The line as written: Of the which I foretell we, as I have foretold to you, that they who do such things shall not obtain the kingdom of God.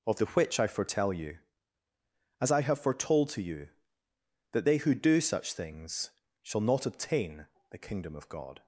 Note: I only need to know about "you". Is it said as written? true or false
true